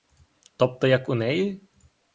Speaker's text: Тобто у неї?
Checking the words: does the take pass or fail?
fail